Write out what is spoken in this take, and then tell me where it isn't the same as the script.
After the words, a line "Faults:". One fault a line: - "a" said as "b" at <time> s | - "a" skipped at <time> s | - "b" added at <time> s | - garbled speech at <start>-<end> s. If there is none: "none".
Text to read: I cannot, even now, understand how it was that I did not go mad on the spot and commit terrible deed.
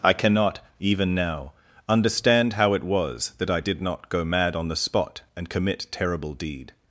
I cannot, even now, understand how it was that I did not go mad on the spot and commit terrible deed.
Faults:
none